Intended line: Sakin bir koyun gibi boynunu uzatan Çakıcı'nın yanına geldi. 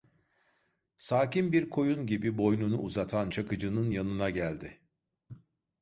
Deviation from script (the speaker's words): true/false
false